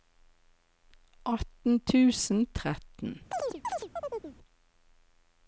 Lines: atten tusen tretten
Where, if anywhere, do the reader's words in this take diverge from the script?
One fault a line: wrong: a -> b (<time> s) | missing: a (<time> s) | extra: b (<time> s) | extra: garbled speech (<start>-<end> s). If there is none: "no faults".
no faults